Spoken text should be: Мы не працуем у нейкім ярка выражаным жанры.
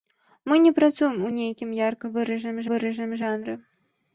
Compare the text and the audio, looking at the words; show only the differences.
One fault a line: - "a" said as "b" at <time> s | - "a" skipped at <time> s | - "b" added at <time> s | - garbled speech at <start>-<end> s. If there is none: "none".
- "выражаным" added at 2.7 s